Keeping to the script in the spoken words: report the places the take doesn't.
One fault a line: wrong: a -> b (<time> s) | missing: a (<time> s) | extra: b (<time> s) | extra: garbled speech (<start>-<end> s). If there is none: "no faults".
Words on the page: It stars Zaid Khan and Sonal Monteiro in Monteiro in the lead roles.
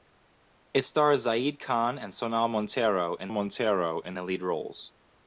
no faults